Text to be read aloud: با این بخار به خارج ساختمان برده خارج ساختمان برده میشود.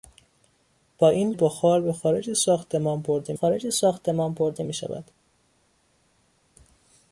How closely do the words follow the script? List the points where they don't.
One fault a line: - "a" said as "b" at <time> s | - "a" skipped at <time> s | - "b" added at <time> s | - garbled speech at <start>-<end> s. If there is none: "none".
none